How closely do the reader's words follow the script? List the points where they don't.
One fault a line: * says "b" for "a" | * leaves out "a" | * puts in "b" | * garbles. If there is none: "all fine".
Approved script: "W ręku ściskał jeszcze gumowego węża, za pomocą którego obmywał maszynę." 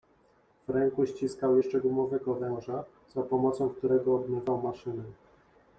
all fine